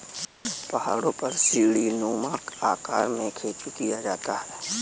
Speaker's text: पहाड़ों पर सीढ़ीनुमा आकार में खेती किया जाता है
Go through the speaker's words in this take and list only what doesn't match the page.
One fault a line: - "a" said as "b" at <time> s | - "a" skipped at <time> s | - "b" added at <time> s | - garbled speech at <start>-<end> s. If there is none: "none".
none